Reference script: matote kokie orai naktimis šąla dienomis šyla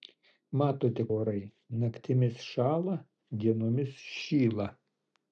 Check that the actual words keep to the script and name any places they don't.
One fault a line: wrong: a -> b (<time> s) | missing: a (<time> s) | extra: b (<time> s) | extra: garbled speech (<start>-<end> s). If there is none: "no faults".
missing: kokie (1.0 s)